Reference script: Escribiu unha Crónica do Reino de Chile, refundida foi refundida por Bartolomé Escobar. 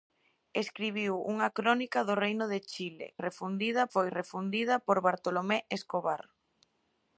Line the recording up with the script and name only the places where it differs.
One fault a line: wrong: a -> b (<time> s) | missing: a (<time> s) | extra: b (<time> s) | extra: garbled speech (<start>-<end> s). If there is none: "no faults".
no faults